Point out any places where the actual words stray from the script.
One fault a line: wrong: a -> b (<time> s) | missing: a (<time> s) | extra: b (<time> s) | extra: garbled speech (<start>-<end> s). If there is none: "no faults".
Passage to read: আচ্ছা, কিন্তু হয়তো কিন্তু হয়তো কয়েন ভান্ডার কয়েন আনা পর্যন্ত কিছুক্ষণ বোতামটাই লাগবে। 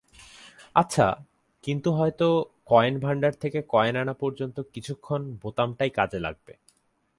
missing: কিন্তু হয়তো (2.3 s)
extra: থেকে (3.3 s)
extra: কাজে (5.9 s)